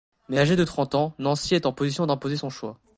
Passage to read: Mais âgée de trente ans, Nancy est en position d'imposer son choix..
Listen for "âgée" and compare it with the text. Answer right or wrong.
right